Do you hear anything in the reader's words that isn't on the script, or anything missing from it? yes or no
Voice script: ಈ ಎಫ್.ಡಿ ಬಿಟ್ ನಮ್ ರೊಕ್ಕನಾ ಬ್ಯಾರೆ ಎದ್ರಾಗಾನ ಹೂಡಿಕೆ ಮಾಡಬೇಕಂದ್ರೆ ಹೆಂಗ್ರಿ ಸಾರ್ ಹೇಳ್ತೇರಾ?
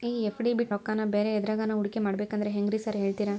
yes